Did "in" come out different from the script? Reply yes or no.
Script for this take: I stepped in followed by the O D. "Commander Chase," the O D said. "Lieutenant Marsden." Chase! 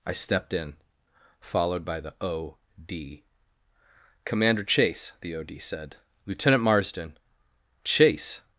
no